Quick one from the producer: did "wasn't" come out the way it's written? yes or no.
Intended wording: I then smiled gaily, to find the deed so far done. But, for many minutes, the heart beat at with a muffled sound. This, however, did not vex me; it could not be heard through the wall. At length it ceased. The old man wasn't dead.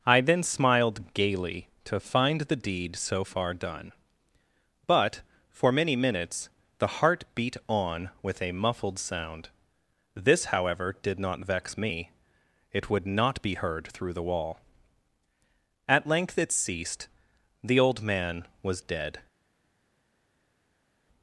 no